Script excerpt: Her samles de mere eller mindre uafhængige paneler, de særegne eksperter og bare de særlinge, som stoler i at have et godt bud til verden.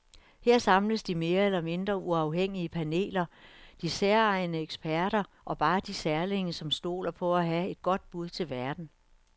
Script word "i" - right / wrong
wrong